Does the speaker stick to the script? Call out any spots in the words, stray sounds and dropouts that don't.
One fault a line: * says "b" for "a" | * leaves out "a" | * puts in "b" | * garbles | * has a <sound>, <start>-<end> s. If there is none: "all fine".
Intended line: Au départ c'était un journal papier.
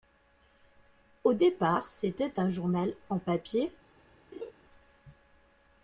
* puts in "en"
* has a laugh, 4.3-4.5 s